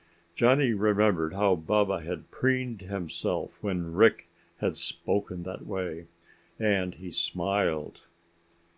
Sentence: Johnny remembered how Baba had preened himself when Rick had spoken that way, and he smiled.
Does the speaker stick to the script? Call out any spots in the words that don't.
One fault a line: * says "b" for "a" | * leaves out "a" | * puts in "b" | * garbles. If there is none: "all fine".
all fine